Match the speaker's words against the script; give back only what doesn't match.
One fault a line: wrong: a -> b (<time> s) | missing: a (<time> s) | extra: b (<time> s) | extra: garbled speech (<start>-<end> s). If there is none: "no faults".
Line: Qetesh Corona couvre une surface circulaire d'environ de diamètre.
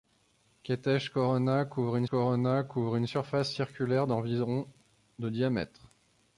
extra: Corona couvre une (2.1 s)